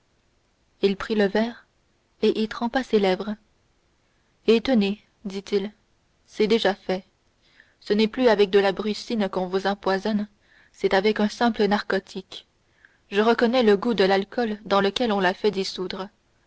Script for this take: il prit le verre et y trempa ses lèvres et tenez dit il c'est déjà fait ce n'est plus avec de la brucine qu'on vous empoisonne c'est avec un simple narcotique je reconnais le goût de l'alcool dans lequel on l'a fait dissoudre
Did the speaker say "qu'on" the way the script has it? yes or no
yes